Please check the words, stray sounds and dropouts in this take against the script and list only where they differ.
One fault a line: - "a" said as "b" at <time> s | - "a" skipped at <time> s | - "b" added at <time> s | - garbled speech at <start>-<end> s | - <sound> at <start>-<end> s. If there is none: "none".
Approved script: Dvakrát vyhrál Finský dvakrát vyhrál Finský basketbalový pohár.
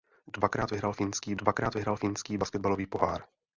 none